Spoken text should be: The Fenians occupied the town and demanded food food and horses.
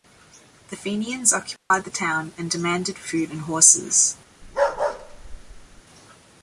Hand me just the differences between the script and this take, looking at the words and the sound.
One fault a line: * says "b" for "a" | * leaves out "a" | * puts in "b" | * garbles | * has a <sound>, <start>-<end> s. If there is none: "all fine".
* has a dropout, 1.6-1.7 s
* leaves out "food"
* has a bark, 4.4-5.8 s